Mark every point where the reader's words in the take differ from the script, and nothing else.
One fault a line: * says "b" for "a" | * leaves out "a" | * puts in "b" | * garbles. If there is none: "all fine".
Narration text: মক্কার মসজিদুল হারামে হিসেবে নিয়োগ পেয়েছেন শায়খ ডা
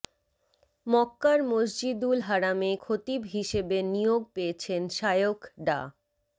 * puts in "খতিব"